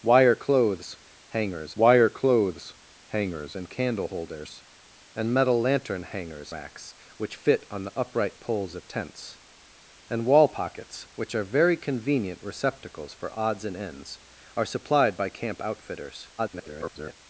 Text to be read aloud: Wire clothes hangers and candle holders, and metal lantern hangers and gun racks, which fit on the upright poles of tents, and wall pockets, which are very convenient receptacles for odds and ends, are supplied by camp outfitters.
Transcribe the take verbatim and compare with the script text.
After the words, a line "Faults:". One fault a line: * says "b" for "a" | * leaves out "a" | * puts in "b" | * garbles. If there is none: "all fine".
Wire clothes hangers wire clothes hangers and candle holders, and metal lantern hangers racks, which fit on the upright poles of tents, and wall pockets, which are very convenient receptacles for odds and ends, are supplied by camp outfitters. [garbled]
Faults:
* puts in "wire clothes hangers"
* leaves out "and gun"
* garbles